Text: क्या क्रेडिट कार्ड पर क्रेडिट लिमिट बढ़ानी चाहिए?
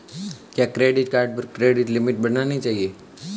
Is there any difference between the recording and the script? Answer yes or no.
no